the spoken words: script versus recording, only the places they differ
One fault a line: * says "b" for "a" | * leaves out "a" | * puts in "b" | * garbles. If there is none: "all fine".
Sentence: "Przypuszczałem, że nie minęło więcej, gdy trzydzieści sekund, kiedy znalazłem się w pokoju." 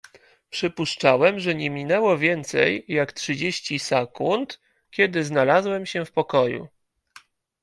* says "jak" for "gdy"